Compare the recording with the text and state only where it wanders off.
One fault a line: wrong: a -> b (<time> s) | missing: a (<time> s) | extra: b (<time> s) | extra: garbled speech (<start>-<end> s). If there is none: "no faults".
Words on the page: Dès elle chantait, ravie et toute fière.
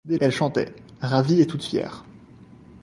no faults